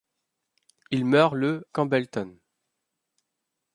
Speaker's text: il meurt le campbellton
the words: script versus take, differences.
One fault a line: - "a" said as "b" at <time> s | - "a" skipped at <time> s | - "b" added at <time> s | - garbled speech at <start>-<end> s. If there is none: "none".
none